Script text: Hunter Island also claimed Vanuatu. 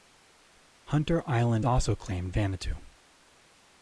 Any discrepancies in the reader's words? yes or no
no